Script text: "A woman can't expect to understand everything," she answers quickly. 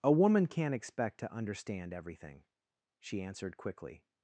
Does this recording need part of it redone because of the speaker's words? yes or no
yes